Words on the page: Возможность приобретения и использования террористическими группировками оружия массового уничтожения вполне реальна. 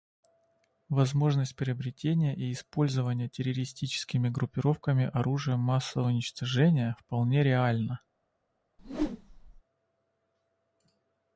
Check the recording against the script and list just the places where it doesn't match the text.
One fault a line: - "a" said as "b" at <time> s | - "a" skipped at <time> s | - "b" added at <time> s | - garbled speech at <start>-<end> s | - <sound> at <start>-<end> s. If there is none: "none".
- whoosh at 8.8-9.6 s